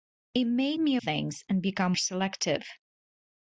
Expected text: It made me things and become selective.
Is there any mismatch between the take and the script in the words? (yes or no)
no